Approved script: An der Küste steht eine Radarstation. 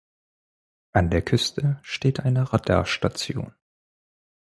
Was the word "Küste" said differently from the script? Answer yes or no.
no